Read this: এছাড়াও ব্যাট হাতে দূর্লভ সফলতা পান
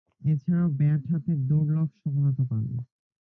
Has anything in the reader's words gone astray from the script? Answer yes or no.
no